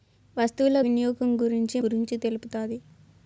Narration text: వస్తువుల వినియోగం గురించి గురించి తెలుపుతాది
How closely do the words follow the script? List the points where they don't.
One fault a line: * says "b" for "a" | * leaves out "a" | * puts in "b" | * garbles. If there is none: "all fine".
all fine